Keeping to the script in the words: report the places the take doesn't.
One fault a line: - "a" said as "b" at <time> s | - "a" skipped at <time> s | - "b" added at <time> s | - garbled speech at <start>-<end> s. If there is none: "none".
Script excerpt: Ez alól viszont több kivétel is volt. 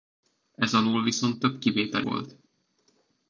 - "is" skipped at 2.0 s